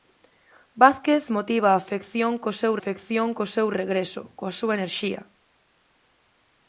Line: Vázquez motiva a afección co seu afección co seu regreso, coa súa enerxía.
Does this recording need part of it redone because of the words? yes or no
no